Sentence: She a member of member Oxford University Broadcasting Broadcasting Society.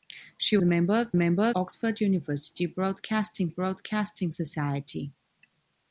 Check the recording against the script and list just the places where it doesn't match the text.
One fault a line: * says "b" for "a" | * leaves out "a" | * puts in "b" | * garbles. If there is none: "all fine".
all fine